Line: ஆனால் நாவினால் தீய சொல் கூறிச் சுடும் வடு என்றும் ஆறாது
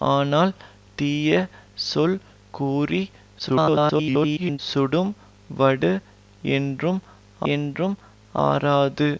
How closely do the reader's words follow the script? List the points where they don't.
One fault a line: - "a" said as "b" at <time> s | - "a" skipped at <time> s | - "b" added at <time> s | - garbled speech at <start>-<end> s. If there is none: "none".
- "நாவினால்" skipped at 0.5 s
- garbled speech at 3.4-4.6 s
- "என்றும்" added at 7.5 s